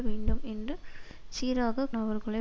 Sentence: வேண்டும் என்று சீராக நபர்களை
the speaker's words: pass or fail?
pass